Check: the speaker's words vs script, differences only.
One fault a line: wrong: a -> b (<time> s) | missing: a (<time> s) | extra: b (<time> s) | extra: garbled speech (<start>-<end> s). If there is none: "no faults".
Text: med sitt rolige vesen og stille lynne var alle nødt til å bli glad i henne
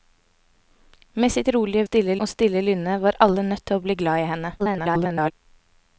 wrong: vesen -> stille (1.8 s)
extra: garbled speech (4.6-5.3 s)